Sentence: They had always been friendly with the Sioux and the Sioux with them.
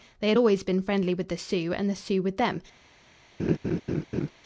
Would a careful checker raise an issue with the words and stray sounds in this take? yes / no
yes